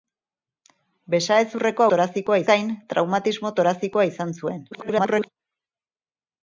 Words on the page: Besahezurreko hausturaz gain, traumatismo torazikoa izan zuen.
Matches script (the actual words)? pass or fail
fail